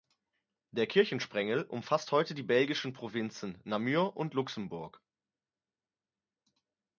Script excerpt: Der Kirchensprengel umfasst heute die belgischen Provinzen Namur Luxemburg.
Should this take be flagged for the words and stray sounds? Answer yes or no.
yes